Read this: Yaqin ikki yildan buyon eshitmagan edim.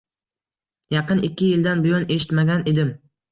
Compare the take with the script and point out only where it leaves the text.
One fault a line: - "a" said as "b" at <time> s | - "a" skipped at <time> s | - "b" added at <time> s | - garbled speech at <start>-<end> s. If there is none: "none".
none